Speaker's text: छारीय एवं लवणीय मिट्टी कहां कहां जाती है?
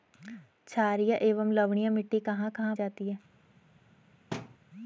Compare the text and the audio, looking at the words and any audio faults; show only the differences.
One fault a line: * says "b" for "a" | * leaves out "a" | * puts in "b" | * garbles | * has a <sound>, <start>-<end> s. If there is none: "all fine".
* has a thud, 4.3-4.6 s